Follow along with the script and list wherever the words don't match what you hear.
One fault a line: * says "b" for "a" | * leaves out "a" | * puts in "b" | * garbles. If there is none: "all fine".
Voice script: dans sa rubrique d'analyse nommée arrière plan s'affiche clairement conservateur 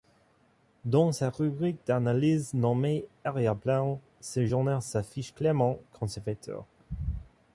* puts in "ce journal"